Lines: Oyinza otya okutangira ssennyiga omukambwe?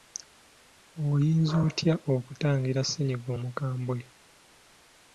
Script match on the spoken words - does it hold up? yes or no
yes